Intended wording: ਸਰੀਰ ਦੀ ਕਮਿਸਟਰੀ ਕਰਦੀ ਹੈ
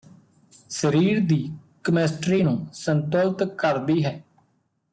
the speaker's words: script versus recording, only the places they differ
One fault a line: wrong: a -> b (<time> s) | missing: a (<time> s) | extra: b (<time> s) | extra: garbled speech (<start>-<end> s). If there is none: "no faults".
extra: ਨੂੰ ਸੰਤੁਲਤ (2.4 s)